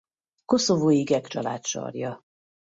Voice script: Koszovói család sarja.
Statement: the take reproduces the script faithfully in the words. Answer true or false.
false